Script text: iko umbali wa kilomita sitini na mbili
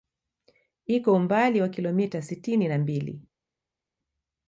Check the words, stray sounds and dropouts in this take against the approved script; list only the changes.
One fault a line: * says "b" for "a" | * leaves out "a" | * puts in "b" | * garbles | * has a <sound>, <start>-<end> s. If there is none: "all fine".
all fine